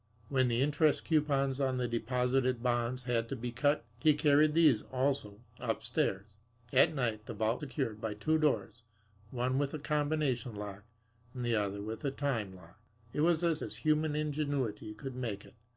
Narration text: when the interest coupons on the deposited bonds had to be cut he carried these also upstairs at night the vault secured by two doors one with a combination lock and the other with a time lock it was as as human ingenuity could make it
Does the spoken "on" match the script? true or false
true